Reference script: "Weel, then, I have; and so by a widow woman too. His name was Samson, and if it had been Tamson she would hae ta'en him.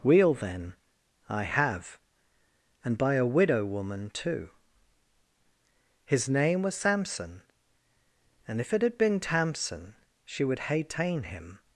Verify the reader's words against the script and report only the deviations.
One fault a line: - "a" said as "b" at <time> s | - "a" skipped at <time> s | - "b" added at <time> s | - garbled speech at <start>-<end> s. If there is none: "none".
- "so" skipped at 3.0 s